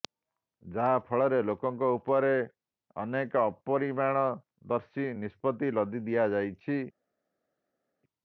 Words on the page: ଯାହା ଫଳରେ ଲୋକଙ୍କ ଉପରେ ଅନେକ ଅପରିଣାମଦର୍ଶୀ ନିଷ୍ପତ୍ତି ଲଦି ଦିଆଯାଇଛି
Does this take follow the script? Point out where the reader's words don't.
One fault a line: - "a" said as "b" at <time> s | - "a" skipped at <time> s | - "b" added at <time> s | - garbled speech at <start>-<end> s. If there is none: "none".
none